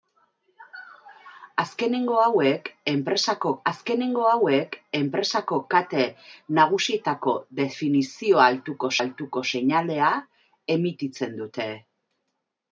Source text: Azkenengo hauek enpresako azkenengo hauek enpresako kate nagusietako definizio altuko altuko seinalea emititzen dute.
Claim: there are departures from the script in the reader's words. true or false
false